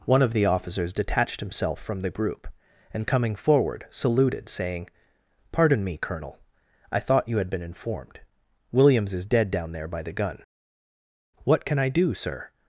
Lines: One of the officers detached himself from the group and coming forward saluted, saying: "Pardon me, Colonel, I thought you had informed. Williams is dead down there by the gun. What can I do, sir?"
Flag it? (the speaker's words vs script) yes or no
yes